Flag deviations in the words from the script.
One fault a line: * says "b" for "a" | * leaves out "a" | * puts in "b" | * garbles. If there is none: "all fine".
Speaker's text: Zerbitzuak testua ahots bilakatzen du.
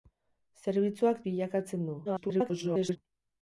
* leaves out "testua ahots"
* garbles